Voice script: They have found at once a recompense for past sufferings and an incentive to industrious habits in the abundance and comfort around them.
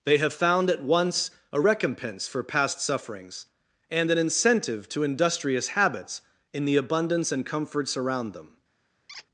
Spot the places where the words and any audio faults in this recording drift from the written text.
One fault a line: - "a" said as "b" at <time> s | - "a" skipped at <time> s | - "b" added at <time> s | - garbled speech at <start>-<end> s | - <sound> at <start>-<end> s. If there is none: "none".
- "comfort" said as "comforts" at 7.4 s
- squeak at 9.1-9.3 s